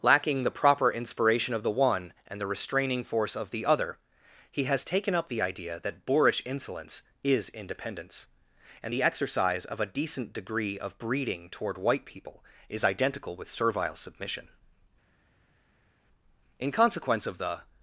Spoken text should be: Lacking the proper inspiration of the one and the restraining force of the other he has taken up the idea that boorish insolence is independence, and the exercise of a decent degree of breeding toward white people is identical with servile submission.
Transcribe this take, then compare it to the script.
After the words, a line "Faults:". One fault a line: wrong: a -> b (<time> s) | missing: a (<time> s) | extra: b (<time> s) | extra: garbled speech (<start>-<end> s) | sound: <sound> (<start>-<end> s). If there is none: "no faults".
Lacking the proper inspiration of the one and the restraining force of the other he has taken up the idea that boorish insolence is independence, and the exercise of a decent degree of breeding toward white people is identical with servile submission. In consequence of the
Faults:
extra: In consequence of the (16.6 s)